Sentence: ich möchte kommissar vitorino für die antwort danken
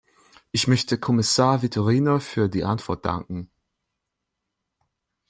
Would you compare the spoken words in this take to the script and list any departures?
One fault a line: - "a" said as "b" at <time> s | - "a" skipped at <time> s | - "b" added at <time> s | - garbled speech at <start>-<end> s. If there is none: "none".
none